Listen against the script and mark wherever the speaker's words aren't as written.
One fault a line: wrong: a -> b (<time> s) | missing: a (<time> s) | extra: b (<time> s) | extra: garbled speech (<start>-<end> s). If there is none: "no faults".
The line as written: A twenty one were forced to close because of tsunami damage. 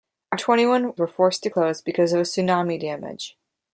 no faults